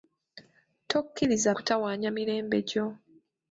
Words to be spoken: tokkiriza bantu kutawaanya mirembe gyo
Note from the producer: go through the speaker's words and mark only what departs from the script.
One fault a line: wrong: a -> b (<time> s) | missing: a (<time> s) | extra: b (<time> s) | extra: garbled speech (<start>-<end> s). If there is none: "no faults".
missing: bantu (1.5 s)